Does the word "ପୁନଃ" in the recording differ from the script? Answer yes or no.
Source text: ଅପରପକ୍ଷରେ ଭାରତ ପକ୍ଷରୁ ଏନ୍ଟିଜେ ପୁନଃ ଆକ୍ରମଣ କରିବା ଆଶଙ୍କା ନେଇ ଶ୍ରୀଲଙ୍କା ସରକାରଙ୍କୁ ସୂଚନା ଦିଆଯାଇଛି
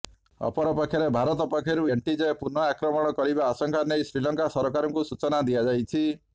no